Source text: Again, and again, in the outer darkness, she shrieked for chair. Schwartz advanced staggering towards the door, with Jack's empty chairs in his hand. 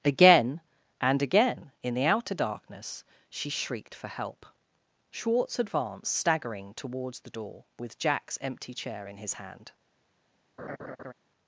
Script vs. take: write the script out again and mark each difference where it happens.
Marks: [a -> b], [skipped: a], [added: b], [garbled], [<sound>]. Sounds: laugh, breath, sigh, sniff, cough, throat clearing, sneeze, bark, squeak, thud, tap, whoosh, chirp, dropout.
Again, and again, in the outer darkness, she shrieked for [chair. -> help] Schwartz advanced staggering towards the door, with Jack's empty [chairs -> chair] in his hand. [laugh]